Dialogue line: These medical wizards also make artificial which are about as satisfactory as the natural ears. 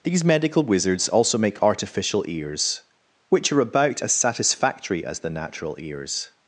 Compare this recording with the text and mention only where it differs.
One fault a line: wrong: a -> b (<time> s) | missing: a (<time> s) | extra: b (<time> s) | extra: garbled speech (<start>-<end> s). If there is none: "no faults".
extra: ears (2.3 s)